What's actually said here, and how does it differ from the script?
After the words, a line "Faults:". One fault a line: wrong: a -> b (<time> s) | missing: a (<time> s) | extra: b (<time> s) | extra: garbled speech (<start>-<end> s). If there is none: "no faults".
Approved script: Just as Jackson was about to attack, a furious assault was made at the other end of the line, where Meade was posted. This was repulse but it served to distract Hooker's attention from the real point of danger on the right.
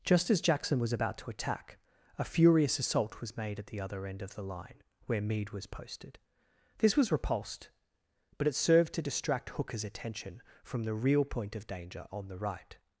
Just as Jackson was about to attack, a furious assault was made at the other end of the line, where Meade was posted. This was repulsed but it served to distract Hooker's attention from the real point of danger on the right.
Faults:
wrong: repulse -> repulsed (7.1 s)